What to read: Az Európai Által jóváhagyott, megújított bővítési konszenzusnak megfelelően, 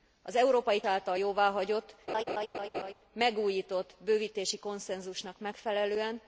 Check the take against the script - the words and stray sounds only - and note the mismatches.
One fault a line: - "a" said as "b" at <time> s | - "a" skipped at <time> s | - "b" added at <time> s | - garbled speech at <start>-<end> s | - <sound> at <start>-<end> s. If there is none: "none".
- laugh at 2.1-2.9 s